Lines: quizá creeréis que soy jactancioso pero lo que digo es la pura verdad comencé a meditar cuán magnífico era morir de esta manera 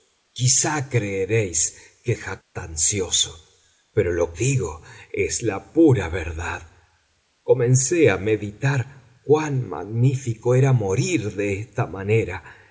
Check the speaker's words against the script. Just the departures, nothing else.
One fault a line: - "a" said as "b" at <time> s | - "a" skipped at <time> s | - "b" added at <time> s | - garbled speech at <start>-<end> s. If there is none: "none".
- "soy" skipped at 2.2 s
- "que" skipped at 4.3 s